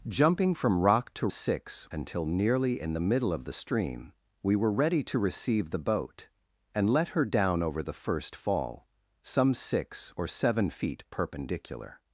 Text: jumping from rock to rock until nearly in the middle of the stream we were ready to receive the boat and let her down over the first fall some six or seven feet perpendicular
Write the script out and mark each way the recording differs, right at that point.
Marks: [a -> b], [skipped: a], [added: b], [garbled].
jumping from rock to [rock -> six] until nearly in the middle of the stream we were ready to receive the boat and let her down over the first fall some six or seven feet perpendicular